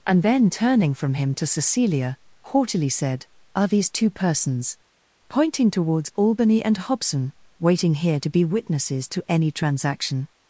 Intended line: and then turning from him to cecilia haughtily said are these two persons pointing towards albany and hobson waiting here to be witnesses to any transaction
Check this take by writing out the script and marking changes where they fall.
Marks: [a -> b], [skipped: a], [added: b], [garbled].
and then turning from him to cecilia haughtily said are these two persons pointing towards albany and hobson waiting here to be witnesses to any transaction